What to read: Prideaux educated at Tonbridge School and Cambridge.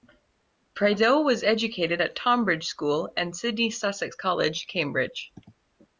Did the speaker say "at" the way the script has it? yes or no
yes